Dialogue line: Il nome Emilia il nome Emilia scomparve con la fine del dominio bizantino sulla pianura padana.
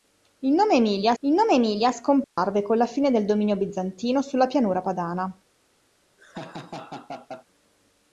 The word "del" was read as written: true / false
true